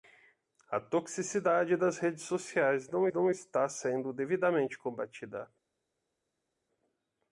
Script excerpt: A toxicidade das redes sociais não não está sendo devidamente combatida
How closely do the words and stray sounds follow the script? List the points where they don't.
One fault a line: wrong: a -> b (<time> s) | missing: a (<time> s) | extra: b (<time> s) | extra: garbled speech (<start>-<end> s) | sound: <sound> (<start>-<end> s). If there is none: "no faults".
no faults